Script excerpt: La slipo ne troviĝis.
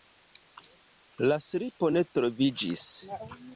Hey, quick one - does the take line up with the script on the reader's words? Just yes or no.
yes